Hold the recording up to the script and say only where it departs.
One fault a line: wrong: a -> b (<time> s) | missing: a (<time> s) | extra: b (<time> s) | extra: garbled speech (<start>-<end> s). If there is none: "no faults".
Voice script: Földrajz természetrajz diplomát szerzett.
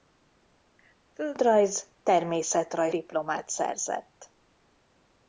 no faults